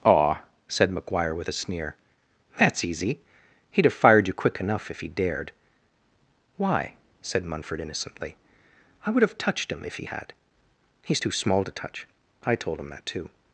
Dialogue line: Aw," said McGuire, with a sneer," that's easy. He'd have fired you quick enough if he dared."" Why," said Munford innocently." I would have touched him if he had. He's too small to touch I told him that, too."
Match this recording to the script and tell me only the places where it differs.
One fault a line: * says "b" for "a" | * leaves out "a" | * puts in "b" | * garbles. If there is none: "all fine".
all fine